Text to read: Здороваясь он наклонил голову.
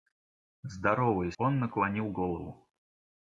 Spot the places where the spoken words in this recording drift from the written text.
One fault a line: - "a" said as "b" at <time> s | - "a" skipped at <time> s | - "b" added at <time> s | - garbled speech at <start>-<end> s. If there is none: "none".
none